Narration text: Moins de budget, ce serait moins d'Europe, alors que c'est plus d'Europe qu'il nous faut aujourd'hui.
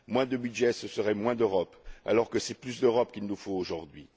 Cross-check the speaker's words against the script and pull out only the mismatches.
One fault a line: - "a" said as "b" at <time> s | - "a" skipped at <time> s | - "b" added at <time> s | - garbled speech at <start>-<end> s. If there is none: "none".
none